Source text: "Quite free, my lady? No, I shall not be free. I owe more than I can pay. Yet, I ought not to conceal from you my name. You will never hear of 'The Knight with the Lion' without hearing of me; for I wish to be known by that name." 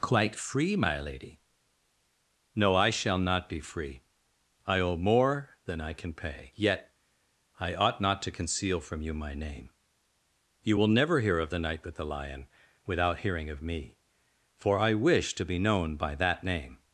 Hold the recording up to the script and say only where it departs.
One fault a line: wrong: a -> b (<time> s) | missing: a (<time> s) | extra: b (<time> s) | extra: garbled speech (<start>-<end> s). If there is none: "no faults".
no faults